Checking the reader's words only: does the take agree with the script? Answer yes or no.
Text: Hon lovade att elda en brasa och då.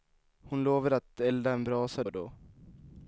yes